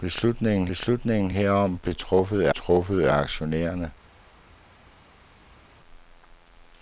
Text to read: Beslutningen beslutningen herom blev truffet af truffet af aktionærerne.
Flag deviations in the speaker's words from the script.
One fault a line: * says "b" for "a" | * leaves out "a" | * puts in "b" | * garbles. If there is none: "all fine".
all fine